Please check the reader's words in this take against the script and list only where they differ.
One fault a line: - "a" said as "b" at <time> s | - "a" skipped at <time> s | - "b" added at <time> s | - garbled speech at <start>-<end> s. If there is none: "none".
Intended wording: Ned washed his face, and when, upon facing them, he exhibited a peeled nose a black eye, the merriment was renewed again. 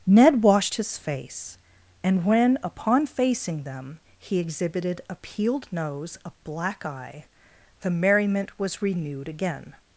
none